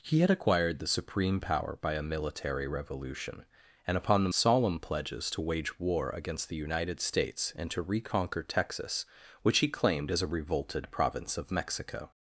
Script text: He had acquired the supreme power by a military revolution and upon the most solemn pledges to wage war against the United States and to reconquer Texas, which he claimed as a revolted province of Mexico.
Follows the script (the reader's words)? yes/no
no